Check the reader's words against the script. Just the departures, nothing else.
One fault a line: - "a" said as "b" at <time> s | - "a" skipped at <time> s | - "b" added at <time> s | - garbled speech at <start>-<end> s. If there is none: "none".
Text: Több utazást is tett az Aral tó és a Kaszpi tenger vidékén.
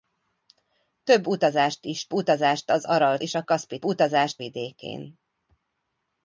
- "tett" said as "utazást" at 2.1 s
- "tó" skipped at 3.2 s
- "tenger" said as "utazást" at 3.8 s